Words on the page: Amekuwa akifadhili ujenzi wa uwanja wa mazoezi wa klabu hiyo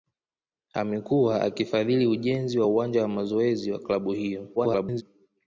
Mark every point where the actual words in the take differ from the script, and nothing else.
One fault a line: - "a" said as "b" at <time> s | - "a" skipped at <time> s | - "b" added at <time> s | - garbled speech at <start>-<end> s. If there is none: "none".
- garbled speech at 4.6-5.0 s